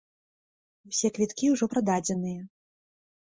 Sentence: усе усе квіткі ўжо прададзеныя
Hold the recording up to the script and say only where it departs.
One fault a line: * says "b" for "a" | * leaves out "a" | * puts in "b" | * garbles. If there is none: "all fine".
* leaves out "усе"